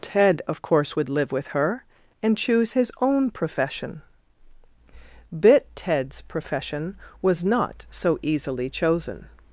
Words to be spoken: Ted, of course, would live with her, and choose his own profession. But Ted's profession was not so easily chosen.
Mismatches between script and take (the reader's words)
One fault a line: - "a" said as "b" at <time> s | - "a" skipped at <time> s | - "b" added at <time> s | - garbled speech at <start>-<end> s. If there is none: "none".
- "But" said as "Bit" at 5.4 s